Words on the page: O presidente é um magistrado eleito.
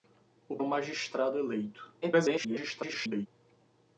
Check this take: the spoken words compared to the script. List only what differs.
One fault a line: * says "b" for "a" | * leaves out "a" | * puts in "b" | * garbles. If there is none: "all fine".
* leaves out "presidente"
* garbles